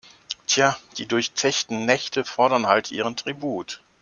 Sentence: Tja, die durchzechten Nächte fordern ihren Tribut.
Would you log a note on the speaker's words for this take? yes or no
yes